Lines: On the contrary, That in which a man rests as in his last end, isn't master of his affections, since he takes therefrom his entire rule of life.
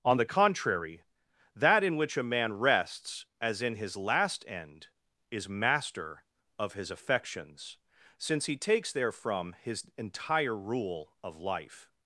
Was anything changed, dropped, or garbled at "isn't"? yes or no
yes